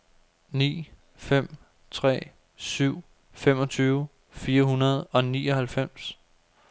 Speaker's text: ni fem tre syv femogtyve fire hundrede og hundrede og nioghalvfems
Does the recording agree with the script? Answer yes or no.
no